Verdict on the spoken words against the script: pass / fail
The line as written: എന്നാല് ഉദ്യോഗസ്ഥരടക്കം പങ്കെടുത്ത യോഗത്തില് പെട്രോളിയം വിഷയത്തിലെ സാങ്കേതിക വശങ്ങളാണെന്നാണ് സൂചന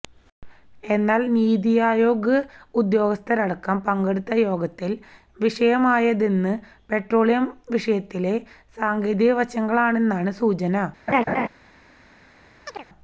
fail